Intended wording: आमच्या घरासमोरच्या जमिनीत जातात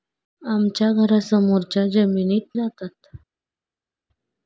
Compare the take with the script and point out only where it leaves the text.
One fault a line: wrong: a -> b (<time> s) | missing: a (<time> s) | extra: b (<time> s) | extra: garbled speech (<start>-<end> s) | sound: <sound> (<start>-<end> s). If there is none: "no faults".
no faults